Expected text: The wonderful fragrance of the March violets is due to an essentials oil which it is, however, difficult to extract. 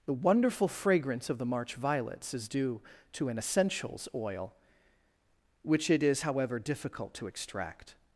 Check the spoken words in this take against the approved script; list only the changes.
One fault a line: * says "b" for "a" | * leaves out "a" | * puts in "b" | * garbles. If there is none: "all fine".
all fine